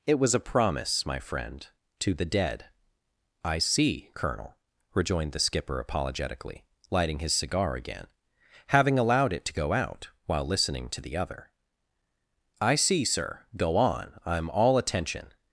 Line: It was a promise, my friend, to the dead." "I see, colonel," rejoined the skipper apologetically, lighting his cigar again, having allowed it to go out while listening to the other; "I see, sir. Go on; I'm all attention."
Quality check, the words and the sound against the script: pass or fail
pass